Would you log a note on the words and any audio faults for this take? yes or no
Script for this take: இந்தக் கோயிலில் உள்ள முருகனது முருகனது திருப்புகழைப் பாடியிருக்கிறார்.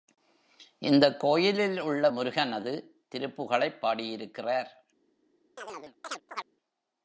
yes